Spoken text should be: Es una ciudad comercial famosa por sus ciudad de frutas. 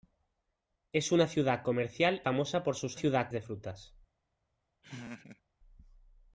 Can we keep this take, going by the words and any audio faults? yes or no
no